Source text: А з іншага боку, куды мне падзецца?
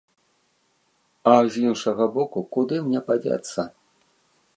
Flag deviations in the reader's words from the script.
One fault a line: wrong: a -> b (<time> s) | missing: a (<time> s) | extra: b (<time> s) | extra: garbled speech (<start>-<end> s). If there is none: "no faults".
no faults